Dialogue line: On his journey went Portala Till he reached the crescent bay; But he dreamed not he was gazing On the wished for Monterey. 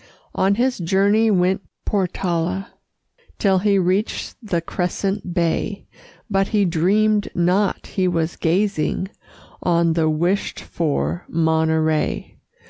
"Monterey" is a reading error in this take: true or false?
false